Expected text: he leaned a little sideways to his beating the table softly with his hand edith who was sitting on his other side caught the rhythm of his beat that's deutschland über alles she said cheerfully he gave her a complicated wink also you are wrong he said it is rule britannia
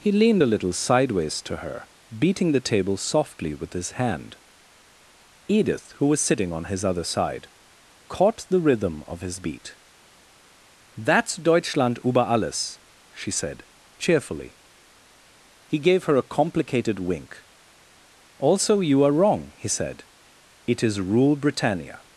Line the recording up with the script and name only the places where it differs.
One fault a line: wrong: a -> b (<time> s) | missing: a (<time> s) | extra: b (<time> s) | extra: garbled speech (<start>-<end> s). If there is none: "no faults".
wrong: his -> her (1.6 s)